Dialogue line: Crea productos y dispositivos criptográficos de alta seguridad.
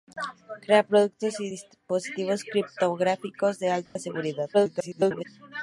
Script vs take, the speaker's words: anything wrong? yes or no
yes